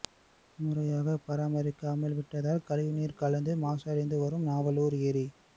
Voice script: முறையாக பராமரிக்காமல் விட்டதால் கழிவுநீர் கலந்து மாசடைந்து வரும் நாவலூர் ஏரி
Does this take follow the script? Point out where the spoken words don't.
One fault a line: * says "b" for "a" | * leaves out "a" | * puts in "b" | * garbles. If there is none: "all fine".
all fine